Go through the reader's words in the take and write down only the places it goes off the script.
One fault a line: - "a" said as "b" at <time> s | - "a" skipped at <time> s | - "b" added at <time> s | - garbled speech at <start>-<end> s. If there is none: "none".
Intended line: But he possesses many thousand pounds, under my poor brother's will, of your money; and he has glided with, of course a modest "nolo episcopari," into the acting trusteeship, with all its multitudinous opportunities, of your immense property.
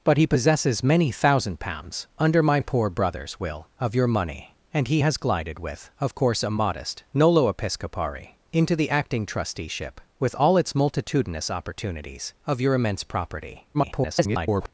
- garbled speech at 13.7-14.7 s